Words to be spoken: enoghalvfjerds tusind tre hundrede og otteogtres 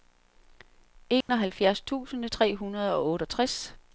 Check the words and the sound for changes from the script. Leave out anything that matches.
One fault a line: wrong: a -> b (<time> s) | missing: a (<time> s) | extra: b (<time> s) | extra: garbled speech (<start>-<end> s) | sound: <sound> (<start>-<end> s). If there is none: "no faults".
sound: dropout (1.2-1.3 s)